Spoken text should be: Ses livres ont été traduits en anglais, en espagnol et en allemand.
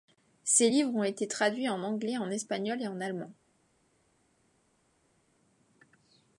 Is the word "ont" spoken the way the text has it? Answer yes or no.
yes